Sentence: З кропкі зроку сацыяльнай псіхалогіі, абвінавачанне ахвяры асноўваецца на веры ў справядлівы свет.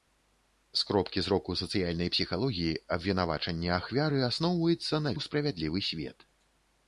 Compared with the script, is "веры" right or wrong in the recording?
wrong